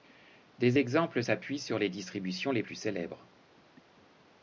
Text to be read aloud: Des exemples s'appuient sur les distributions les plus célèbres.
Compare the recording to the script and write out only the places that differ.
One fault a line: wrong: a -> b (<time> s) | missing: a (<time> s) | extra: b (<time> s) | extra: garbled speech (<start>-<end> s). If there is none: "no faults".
no faults